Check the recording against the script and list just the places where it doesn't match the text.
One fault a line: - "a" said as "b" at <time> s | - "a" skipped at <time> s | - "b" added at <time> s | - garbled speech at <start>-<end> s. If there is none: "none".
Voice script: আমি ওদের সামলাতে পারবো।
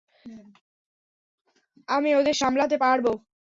none